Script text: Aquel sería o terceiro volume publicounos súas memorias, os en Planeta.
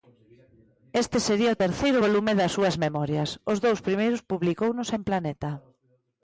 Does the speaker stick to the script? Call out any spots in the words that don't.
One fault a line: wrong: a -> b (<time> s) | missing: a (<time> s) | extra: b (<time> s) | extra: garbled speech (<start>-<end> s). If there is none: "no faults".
wrong: Aquel -> Este (1.0 s)
wrong: publicounos -> das (2.4 s)
extra: dous primeiros publicounos (3.7 s)